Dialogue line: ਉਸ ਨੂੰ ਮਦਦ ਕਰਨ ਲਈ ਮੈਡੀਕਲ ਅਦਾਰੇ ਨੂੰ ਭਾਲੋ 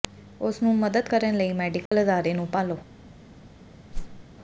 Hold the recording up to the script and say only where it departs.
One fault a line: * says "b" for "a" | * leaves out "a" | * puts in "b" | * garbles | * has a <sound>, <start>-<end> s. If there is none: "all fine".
* has a dropout, 1.9-1.9 s
* has a whoosh, 3.9-4.3 s